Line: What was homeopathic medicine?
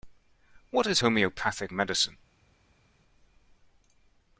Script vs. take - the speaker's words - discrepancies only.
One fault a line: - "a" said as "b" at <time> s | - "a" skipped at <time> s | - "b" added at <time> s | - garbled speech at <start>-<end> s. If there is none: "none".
- "was" said as "is" at 0.9 s